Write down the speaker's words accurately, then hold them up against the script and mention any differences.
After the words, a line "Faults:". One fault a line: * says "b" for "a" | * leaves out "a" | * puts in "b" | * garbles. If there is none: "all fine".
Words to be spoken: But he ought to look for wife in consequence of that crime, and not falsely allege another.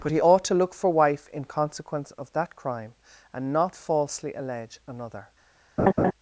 But he ought to look for wife in consequence of that crime, and not falsely allege another.
Faults:
all fine